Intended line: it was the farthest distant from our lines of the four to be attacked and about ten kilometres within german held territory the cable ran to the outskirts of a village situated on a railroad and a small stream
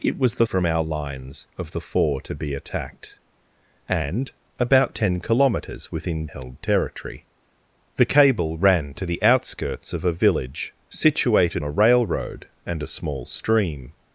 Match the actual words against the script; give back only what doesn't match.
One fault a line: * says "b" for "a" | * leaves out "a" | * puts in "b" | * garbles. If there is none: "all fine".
* leaves out "farthest distant"
* leaves out "german"
* leaves out "on"